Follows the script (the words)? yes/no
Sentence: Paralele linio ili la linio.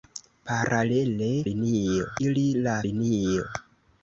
yes